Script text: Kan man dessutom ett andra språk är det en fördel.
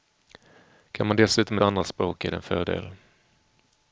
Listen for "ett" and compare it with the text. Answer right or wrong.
wrong